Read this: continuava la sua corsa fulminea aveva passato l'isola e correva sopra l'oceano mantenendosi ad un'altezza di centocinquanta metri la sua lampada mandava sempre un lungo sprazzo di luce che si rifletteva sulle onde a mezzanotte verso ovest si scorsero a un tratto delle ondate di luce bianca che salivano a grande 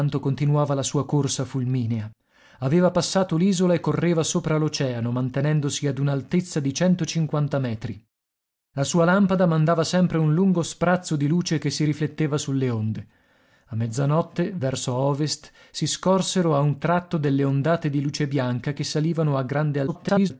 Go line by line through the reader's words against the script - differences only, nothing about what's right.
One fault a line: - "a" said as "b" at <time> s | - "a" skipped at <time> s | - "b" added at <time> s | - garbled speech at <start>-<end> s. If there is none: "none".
- garbled speech at 19.9-20.3 s